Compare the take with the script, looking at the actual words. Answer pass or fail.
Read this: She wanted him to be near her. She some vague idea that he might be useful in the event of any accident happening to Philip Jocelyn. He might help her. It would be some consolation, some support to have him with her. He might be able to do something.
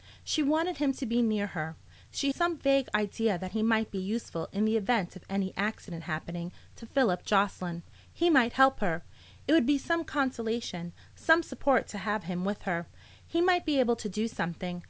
pass